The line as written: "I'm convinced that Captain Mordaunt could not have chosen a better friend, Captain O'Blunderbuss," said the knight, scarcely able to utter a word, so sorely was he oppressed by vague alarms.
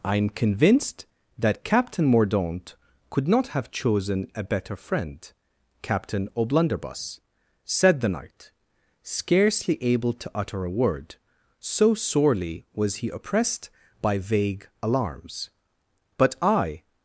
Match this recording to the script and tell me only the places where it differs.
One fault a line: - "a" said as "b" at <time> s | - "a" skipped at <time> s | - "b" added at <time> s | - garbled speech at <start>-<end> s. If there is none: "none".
- "But I" added at 16.2 s